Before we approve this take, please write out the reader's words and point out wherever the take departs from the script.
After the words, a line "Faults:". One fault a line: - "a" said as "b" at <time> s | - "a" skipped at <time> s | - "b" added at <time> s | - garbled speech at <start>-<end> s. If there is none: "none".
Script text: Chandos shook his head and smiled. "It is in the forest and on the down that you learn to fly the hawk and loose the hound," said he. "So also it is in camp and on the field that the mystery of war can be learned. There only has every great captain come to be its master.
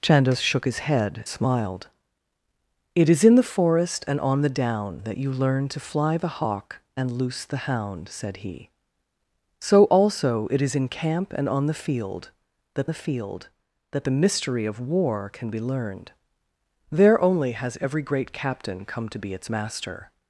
Chandos shook his head smiled. "It is in the forest and on the down that you learn to fly the hawk and loose the hound," said he. "So also it is in camp and on the field that the field that the mystery of war can be learned. There only has every great captain come to be its master.
Faults:
- "and" skipped at 1.2 s
- "field that the" added at 13.0 s